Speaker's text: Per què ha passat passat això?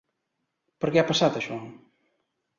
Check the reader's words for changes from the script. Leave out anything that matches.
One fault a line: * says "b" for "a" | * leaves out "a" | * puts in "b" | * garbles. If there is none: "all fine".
* leaves out "passat"